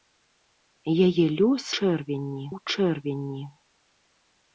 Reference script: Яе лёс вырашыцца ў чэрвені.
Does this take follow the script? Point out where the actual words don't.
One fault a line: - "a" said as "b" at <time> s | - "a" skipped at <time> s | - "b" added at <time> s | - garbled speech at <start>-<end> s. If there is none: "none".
- "вырашыцца" said as "чэрвені" at 1.8 s